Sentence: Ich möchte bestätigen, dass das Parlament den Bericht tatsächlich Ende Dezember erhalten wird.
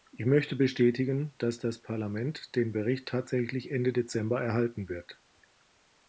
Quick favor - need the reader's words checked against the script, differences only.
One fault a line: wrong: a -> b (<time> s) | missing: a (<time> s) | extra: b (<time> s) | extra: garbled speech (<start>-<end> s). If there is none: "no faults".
no faults